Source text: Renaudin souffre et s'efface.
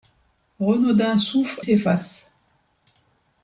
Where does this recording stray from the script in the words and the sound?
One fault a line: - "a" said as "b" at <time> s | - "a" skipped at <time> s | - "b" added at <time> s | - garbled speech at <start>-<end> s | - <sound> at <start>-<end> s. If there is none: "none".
- "et" skipped at 1.6 s